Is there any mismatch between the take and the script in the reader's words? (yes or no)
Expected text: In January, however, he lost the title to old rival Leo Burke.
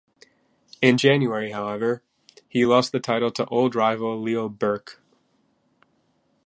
no